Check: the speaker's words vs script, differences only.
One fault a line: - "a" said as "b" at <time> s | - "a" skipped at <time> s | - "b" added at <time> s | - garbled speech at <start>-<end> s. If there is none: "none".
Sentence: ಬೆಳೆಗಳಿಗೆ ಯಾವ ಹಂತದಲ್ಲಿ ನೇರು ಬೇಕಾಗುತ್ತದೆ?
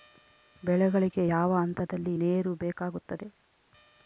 none